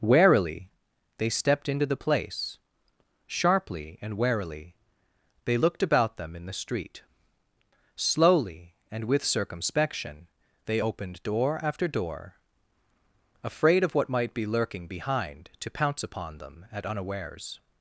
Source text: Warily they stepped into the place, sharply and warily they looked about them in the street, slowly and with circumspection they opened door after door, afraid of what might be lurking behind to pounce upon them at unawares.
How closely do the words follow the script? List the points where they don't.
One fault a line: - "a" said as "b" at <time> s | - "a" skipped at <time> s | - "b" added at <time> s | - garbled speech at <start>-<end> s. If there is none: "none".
none